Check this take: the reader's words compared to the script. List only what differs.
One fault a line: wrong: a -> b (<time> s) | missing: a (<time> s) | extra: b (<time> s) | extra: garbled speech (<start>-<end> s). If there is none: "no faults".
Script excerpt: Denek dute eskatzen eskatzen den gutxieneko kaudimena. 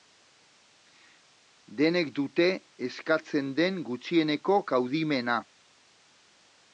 missing: eskatzen (3.5 s)